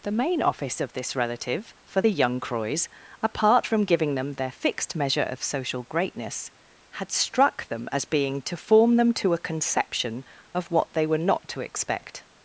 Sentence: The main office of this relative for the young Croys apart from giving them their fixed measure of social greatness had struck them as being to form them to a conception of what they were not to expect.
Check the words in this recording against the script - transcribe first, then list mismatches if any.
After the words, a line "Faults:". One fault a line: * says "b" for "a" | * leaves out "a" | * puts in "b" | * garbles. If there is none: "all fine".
The main office of this relative for the young Croys apart from giving them their fixed measure of social greatness had struck them as being to form them to a conception of what they were not to expect.
Faults:
all fine